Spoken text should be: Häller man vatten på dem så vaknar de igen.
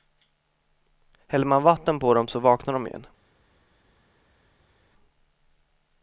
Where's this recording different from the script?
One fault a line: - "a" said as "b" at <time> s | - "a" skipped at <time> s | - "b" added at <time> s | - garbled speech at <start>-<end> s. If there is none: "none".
none